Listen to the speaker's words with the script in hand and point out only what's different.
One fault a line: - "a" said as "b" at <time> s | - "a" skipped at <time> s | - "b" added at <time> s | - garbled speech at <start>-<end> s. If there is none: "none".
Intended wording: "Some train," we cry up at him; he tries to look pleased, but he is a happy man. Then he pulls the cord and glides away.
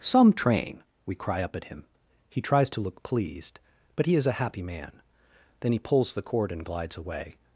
none